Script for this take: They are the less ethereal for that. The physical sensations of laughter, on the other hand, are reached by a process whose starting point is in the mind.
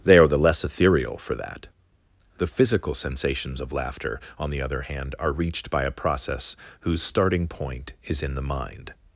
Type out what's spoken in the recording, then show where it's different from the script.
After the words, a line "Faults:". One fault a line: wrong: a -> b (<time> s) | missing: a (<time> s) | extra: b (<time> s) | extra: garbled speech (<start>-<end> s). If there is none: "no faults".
They are the less ethereal for that. The physical sensations of laughter, on the other hand, are reached by a process whose starting point is in the mind.
Faults:
no faults